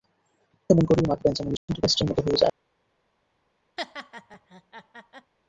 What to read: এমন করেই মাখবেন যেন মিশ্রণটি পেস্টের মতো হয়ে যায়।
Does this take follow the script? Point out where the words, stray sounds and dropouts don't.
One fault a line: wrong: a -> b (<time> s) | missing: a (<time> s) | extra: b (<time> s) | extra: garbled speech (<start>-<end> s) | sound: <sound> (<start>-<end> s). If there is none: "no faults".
sound: dropout (1.6-1.7 s)
sound: laugh (3.8-5.3 s)